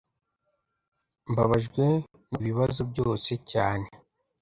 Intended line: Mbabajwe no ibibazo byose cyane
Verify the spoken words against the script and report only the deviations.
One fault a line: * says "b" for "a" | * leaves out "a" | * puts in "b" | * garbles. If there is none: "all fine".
all fine